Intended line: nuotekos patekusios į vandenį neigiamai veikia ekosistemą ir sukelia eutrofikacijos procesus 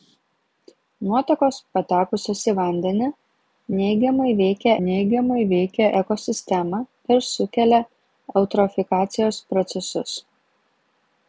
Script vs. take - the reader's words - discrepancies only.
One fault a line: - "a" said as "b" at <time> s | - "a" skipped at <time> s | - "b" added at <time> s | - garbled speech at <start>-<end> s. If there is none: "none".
- "neigiamai veikia" added at 4.9 s